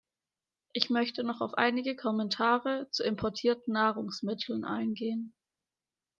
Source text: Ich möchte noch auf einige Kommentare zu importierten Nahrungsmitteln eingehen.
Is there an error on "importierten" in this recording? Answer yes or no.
no